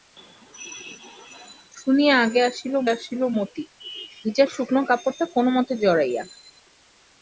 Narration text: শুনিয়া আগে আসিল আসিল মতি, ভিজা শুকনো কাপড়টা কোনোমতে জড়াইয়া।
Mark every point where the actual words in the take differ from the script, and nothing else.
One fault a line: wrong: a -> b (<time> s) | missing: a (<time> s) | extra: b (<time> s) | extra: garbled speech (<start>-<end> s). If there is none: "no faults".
no faults